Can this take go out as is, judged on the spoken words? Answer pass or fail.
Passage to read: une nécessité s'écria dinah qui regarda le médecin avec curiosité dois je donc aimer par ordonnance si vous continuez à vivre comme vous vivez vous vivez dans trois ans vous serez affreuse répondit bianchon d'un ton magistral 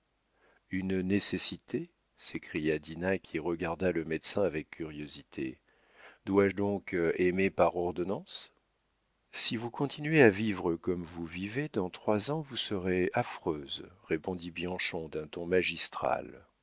fail